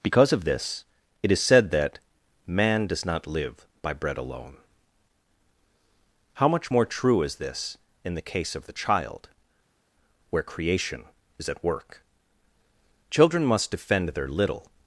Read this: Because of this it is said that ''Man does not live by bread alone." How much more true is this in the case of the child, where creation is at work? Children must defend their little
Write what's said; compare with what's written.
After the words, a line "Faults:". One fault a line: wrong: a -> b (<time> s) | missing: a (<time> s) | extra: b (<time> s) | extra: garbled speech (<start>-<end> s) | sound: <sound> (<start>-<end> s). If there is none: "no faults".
Because of this it is said that ''Man does not live by bread alone." How much more true is this in the case of the child, where creation is at work? Children must defend their little
Faults:
no faults